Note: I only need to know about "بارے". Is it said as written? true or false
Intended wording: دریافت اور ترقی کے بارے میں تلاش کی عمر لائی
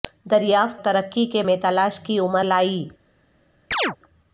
false